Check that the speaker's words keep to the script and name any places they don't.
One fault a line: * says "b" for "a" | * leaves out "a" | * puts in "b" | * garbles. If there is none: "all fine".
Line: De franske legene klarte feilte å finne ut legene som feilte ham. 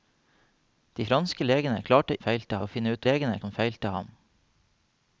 all fine